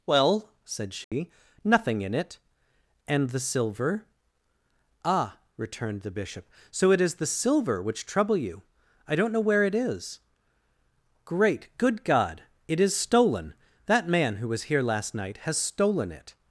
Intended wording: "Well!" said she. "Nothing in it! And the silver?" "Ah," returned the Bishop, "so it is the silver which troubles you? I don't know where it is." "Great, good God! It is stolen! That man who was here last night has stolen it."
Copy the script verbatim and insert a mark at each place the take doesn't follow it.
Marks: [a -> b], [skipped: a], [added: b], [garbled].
"Well!" said she. "Nothing in it! And the silver?" "Ah," returned the Bishop, "so it is the silver which [troubles -> trouble] you? I don't know where it is." "Great, good God! It is stolen! That man who was here last night has stolen it."